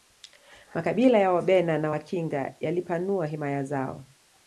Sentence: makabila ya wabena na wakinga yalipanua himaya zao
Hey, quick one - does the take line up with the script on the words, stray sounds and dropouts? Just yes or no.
yes